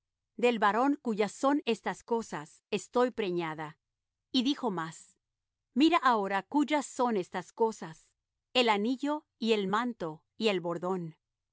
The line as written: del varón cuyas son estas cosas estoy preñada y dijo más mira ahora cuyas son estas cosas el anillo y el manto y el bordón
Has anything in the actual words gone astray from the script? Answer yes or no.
no